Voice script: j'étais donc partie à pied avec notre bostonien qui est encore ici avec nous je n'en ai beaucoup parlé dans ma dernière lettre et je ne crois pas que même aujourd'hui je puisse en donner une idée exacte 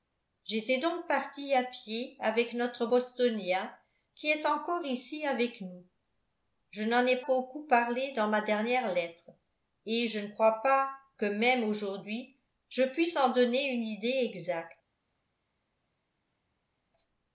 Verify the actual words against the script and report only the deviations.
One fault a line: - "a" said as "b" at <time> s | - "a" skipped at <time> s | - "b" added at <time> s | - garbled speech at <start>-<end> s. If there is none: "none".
none